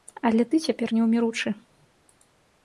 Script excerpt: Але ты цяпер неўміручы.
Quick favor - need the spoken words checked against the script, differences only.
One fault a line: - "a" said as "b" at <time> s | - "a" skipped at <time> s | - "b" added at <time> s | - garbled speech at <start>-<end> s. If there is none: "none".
none